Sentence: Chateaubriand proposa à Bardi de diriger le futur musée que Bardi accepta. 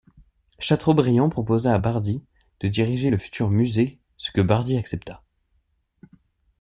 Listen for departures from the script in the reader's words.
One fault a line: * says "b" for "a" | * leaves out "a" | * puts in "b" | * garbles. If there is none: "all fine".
* puts in "ce"